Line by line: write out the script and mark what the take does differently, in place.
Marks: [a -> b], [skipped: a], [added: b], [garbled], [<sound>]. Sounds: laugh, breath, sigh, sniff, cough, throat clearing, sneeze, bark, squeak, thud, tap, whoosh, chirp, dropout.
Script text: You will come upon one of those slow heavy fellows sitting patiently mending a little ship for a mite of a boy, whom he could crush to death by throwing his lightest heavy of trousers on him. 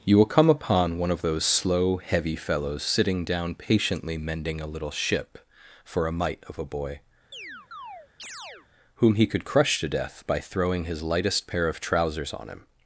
You will come upon one of those slow heavy fellows sitting [added: down] patiently mending a little ship for a mite of a boy, [chirp] whom he could crush to death by throwing his lightest [heavy -> pair] of trousers on him.